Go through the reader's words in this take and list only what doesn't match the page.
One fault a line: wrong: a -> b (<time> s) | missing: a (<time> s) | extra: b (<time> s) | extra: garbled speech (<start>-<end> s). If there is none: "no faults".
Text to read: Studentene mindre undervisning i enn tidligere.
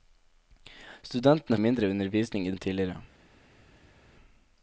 no faults